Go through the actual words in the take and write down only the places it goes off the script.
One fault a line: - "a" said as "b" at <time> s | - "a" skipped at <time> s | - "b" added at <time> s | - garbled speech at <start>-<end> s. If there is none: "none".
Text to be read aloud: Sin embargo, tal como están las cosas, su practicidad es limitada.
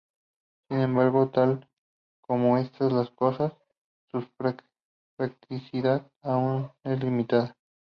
- "aún" added at 6.2 s